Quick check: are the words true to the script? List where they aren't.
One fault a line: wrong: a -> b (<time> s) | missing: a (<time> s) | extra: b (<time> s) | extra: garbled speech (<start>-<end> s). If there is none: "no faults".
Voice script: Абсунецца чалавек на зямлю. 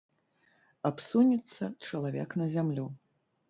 no faults